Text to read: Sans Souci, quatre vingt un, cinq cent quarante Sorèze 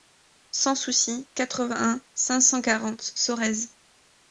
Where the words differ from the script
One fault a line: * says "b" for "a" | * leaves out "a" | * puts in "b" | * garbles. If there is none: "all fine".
all fine